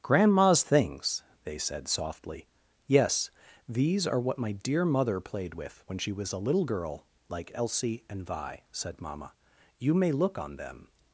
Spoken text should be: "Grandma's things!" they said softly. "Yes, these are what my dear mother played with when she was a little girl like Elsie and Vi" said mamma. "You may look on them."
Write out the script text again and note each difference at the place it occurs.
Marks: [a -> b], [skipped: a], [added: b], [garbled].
"Grandma's things!" they said softly. "Yes, these are what my dear mother played with when she was a little girl like Elsie and Vi" said mamma. "You may look on them."